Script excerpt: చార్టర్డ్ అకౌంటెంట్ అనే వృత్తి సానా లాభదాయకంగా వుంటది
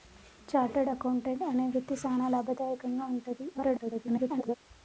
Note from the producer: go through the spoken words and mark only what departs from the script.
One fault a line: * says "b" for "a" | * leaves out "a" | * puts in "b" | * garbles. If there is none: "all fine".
* garbles